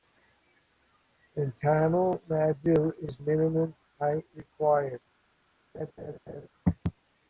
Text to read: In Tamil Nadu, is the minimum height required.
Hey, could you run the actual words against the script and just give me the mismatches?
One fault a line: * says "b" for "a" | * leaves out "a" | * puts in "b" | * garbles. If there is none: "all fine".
* leaves out "the"